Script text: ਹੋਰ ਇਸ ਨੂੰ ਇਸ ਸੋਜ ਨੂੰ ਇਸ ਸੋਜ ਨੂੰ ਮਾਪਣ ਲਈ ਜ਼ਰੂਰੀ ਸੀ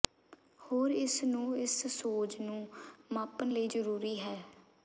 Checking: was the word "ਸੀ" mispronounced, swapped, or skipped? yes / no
yes